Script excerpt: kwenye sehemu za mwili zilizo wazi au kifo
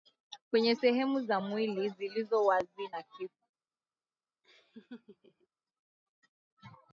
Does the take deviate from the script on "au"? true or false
true